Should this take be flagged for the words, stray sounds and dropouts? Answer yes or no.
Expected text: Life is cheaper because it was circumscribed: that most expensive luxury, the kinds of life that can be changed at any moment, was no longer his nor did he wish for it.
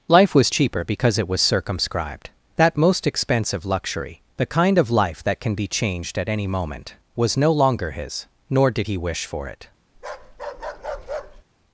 yes